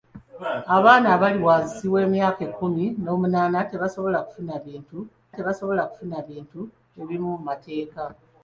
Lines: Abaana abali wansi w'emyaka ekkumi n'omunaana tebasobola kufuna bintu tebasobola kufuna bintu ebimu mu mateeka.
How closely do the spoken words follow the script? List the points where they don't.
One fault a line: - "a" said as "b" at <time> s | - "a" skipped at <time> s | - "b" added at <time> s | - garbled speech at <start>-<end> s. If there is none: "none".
none